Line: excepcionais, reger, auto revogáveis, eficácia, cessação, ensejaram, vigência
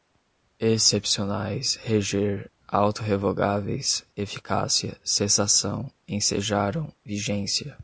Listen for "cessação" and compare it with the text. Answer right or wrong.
right